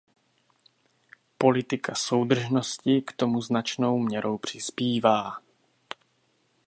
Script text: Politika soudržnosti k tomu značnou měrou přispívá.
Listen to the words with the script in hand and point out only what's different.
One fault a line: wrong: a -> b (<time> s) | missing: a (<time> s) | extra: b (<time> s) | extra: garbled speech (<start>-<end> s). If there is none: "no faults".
no faults